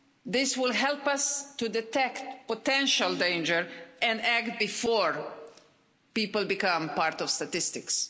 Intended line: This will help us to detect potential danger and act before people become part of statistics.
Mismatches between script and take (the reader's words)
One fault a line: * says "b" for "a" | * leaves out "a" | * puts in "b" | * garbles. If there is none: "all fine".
all fine